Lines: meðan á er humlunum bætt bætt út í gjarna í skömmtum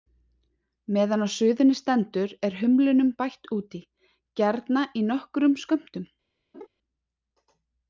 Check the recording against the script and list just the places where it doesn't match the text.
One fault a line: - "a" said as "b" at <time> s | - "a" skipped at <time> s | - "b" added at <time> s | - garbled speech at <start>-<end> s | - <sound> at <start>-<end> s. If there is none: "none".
- "suðunni stendur" added at 1.3 s
- "bætt" skipped at 3.5 s
- "nokkrum" added at 5.1 s
- laugh at 6.5-6.7 s